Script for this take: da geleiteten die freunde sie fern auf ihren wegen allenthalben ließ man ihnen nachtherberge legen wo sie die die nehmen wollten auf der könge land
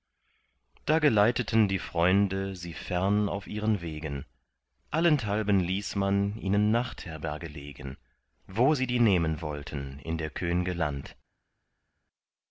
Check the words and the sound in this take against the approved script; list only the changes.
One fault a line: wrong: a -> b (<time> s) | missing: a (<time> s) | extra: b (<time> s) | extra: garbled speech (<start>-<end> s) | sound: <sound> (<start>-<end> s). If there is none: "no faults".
missing: die (9.0 s)
wrong: auf -> in (10.0 s)